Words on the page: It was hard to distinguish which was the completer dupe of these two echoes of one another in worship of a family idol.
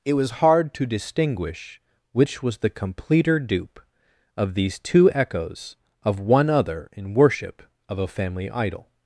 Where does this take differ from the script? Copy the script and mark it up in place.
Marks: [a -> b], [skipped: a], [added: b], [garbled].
It was hard to distinguish which was the completer dupe of these two echoes of one [another -> other] in worship of a family idol.